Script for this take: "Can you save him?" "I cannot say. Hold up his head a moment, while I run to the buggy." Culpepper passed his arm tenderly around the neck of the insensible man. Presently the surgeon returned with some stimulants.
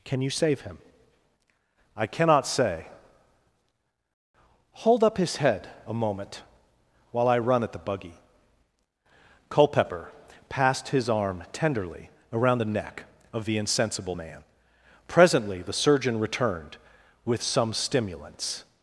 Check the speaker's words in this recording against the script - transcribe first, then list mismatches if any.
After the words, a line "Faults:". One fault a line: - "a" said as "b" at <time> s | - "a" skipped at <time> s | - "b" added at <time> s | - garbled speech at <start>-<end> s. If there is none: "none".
"Can you save him?" "I cannot say. Hold up his head a moment, while I run at the buggy." Culpepper passed his arm tenderly around the neck of the insensible man. Presently the surgeon returned with some stimulants.
Faults:
- "to" said as "at" at 7.6 s